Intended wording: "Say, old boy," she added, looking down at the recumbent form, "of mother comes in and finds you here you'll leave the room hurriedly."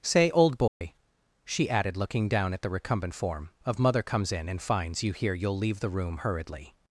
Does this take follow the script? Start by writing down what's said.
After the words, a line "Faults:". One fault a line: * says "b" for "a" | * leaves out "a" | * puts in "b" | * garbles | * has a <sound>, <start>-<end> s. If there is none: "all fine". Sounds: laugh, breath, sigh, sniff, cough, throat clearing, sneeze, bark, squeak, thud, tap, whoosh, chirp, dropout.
"Say, old boy," she added, looking down at the recumbent form, "of mother comes in and finds you here you'll leave the room hurriedly."
Faults:
* has a dropout, 0.7-0.8 s